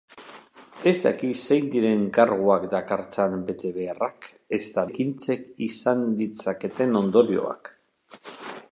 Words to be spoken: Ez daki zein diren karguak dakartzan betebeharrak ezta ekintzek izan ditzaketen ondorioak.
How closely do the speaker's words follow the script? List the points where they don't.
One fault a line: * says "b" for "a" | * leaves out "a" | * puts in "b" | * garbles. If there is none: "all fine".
all fine